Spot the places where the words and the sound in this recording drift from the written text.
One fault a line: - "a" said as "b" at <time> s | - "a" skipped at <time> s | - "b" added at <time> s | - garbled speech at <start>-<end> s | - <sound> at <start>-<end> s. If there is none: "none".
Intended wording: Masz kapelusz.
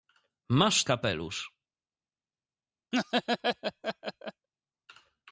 - laugh at 2.9-4.5 s